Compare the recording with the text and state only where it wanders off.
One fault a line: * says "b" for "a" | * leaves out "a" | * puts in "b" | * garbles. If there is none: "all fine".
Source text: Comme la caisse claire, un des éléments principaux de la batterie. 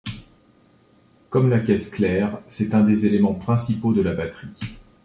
* puts in "c'est"